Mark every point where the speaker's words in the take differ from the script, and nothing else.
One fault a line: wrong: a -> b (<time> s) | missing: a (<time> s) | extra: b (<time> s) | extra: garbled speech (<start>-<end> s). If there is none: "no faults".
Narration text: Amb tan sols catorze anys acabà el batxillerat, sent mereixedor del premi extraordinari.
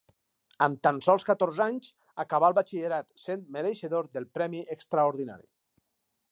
no faults